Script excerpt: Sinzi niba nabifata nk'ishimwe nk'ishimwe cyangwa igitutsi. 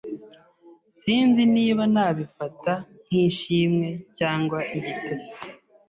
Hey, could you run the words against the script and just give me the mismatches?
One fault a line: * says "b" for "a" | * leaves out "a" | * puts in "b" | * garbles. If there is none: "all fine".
* leaves out "nk'ishimwe"